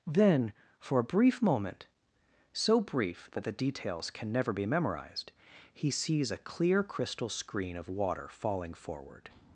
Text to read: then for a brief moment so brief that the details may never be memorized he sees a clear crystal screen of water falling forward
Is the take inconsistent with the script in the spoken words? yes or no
yes